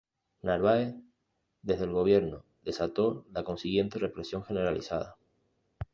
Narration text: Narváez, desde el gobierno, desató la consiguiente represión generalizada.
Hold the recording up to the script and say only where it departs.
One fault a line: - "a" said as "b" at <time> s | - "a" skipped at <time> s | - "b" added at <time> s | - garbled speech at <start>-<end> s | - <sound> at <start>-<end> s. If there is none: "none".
none